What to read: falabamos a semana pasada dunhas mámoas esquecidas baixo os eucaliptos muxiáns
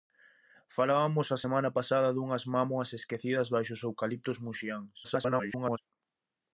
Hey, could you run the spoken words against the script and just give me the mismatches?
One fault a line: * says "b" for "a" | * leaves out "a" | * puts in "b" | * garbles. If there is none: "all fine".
* garbles